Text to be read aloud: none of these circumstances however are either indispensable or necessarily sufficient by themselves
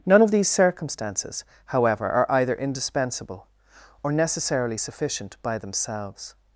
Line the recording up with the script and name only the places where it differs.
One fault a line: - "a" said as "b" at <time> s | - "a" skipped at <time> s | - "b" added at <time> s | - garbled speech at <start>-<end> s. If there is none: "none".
none